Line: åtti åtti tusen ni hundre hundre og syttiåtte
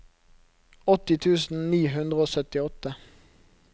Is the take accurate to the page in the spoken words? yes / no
no